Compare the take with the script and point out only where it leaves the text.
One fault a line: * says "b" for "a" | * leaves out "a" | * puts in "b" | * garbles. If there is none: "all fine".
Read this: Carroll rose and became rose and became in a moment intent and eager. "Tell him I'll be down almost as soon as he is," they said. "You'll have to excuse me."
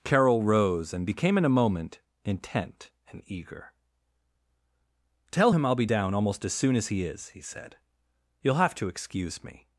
* leaves out "rose and became"
* says "he" for "they"